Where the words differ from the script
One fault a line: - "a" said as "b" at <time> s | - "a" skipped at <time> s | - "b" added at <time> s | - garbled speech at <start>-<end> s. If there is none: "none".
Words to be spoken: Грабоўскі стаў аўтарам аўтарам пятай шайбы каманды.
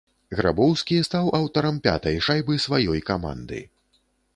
- "аўтарам" skipped at 1.8 s
- "сваёй" added at 2.7 s